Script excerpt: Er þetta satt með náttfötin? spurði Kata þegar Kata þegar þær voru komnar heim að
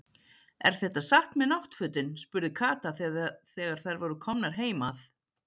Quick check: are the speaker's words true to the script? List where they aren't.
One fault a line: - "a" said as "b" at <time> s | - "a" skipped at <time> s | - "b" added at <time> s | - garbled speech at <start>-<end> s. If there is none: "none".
- "Kata þegar" skipped at 3.8 s